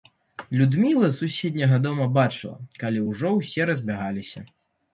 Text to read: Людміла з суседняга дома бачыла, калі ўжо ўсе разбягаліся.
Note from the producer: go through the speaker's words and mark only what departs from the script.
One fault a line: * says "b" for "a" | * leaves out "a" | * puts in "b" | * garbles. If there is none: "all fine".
all fine